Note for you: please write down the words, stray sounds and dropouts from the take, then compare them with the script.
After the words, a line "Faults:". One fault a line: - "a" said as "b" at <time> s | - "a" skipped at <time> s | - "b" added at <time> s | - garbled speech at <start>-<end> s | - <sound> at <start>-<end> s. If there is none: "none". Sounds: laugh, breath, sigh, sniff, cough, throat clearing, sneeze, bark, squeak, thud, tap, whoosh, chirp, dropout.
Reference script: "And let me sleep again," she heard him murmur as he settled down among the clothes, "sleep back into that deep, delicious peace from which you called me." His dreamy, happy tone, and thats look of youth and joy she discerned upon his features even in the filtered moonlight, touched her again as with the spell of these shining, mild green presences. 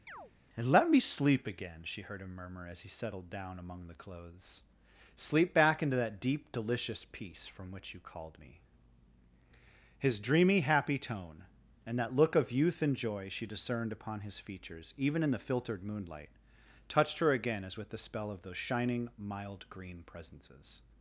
"And let me sleep again," she heard him murmur as he settled down among the clothes, "sleep back into that deep, delicious peace from which you called me." His dreamy, happy tone, and that look of youth and joy she discerned upon his features even in the filtered moonlight, touched her again as with the spell of those shining, mild green presences.
Faults:
- chirp at 0.1-0.3 s
- "thats" said as "that" at 12.0 s
- "these" said as "those" at 18.4 s